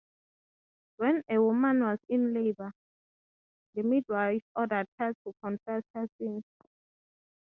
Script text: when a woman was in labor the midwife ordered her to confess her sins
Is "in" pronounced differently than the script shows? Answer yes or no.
no